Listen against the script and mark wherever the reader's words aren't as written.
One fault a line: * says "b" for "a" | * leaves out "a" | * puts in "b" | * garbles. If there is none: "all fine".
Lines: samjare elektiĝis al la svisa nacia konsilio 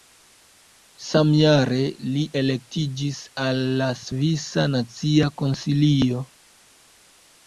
* puts in "li"